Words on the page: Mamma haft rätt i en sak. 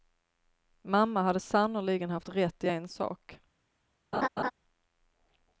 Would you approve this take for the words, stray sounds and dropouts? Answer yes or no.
no